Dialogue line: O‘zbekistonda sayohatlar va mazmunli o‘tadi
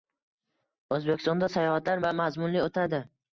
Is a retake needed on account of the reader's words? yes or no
no